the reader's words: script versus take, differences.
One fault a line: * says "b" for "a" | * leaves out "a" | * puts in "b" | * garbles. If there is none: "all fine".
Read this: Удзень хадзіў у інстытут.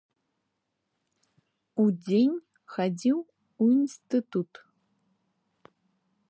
all fine